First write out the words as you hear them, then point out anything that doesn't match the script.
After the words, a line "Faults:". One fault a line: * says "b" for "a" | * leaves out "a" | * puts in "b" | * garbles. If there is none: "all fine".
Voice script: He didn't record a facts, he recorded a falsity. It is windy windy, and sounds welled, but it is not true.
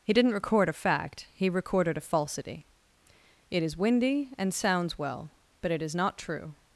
He didn't record a fact, he recorded a falsity. It is windy, and sounds well, but it is not true.
Faults:
* says "fact" for "facts"
* leaves out "windy"
* says "well" for "welled"